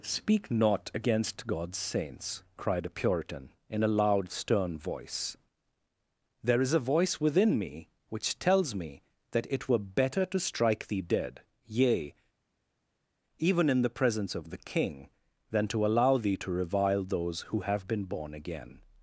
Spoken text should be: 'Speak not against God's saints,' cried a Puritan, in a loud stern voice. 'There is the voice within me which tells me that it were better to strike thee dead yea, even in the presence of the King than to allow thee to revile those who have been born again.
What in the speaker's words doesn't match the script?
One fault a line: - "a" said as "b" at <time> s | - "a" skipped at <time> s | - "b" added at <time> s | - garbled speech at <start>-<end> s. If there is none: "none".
- "the" said as "a" at 6.7 s